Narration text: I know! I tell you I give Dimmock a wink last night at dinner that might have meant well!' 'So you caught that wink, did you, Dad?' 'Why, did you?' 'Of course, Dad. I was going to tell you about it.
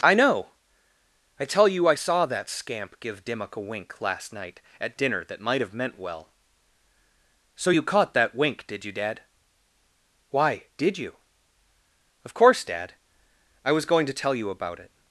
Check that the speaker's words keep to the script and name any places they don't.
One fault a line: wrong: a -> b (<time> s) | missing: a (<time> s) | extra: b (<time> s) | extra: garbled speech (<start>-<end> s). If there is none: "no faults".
extra: saw that scamp (1.9 s)